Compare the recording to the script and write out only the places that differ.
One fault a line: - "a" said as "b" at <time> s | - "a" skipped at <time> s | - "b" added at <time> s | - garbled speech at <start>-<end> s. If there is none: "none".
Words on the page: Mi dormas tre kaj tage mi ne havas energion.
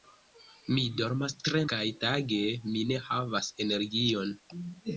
none